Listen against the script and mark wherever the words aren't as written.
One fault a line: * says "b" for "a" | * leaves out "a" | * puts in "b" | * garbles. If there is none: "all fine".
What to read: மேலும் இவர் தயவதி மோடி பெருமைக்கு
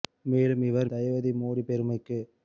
all fine